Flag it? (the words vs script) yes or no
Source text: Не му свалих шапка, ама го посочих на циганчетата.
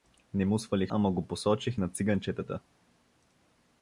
yes